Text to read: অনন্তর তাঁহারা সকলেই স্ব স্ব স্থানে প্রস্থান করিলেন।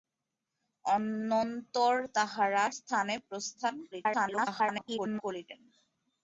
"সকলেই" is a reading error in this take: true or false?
true